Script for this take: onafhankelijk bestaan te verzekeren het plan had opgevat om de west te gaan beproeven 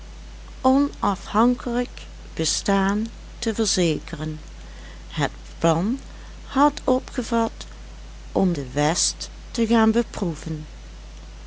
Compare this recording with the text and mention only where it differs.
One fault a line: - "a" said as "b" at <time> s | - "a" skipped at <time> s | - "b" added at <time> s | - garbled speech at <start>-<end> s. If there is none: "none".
none